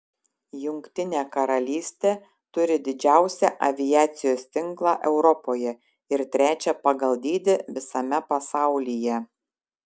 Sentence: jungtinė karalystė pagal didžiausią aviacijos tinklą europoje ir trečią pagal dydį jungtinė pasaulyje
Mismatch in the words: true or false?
true